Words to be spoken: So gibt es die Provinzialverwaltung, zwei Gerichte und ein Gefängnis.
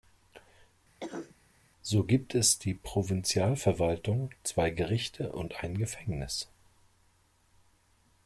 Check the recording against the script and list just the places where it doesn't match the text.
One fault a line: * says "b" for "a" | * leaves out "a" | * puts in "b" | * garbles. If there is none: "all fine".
all fine